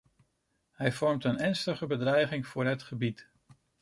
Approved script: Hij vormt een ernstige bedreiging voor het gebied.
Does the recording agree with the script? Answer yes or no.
yes